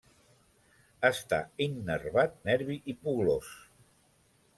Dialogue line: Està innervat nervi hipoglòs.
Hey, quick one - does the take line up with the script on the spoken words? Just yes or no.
yes